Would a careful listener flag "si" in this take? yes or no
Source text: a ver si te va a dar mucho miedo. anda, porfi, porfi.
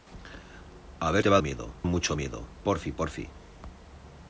yes